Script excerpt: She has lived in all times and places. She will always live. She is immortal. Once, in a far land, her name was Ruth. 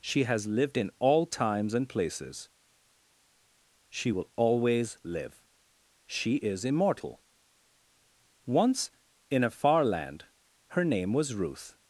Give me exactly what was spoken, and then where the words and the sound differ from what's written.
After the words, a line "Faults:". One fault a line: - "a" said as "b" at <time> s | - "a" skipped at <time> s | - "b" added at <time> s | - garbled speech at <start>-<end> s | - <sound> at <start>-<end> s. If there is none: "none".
She has lived in all times and places. She will always live. She is immortal. Once, in a far land, her name was Ruth.
Faults:
none